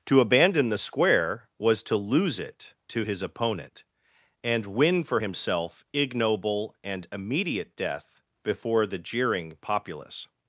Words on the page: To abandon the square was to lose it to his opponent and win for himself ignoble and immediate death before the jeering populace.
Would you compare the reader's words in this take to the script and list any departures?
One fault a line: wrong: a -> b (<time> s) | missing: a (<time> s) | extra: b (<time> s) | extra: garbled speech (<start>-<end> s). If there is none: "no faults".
no faults